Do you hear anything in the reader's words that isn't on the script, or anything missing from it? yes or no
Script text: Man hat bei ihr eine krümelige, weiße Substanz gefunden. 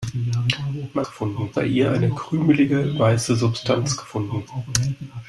yes